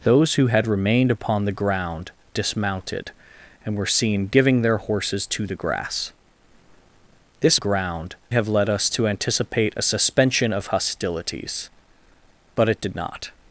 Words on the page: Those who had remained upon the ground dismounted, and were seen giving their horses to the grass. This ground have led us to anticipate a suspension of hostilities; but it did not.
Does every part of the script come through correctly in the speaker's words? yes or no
yes